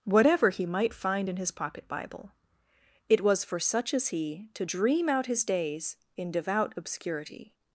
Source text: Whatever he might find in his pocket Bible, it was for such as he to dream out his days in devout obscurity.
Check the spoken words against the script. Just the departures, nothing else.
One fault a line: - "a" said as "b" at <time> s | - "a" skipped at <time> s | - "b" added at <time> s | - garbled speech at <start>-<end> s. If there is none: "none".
none